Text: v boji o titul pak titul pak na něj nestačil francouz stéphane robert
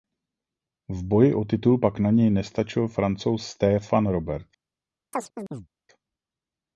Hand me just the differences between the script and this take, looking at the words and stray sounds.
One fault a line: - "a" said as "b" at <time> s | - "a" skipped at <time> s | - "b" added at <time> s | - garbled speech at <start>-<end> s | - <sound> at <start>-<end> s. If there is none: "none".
- "titul pak" skipped at 2.0 s
- chirp at 5.1-5.7 s